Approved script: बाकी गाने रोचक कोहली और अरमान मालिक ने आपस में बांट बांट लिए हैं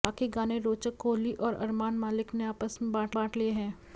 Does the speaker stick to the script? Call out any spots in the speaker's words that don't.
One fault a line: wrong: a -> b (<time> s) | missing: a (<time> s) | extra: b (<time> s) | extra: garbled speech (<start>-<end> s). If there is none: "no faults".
no faults